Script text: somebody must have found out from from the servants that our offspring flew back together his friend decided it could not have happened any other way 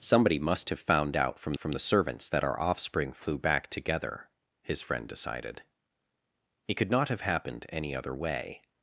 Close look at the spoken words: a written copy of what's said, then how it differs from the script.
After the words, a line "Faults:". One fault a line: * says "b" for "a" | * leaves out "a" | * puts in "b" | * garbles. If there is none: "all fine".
somebody must have found out from from the servants that our offspring flew back together his friend decided it could not have happened any other way
Faults:
all fine